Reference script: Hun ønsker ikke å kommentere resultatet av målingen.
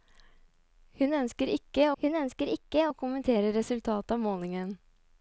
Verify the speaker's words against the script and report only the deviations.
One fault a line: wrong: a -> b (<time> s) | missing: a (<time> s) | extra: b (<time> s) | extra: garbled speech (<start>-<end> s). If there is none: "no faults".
extra: hun ønsker ikke (2.0 s)